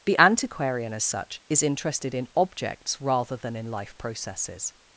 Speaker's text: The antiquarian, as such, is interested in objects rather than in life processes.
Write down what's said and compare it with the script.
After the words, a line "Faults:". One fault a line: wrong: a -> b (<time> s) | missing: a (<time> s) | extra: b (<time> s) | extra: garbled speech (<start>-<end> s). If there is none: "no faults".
The antiquarian, as such, is interested in objects rather than in life processes.
Faults:
no faults